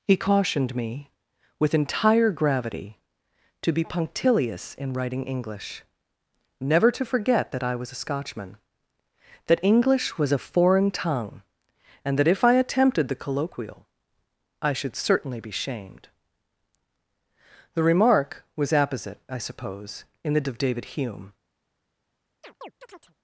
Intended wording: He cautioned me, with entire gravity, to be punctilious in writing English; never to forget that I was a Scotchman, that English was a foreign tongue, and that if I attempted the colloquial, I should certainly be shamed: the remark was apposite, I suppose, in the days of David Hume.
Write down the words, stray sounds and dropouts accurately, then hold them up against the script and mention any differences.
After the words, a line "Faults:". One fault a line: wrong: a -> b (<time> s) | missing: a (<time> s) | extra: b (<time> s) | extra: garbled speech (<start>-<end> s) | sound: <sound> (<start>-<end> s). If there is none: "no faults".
He cautioned me, with entire gravity, to be punctilious in writing English; never to forget that I was a Scotchman, that English was a foreign tongue, and that if I attempted the colloquial, I should certainly be shamed: the remark was apposite, I suppose, in the of David Hume.
Faults:
missing: days (20.5 s)
sound: chirp (22.4-23.1 s)